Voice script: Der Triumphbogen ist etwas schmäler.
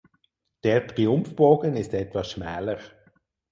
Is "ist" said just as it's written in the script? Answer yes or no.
yes